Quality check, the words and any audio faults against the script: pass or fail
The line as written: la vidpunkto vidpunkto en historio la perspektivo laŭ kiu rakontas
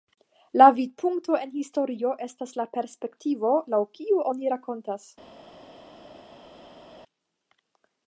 fail